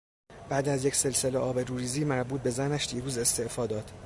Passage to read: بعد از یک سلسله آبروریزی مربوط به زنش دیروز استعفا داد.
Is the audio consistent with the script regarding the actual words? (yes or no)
yes